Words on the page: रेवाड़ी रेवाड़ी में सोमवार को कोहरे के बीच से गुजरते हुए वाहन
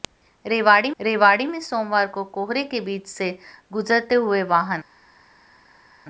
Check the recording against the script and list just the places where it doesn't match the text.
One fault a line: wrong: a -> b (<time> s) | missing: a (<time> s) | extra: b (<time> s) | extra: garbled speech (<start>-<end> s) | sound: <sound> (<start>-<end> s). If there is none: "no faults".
no faults